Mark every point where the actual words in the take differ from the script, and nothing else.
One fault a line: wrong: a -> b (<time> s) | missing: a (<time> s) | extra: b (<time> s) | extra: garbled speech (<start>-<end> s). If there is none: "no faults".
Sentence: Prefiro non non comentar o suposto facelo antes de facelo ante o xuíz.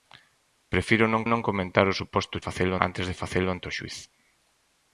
no faults